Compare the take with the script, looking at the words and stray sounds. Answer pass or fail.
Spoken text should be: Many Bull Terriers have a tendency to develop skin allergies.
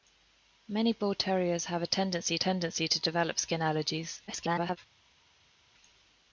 fail